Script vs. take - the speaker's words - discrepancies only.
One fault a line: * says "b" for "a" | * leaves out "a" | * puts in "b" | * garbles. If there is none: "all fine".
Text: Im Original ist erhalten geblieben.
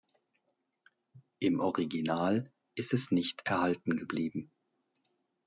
* puts in "es nicht"